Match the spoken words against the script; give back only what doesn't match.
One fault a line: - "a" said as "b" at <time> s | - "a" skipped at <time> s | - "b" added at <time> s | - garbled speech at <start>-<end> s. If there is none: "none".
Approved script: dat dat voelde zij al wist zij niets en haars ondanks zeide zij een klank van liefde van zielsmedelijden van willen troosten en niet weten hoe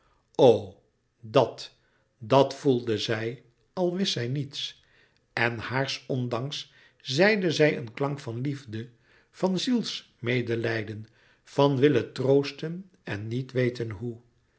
none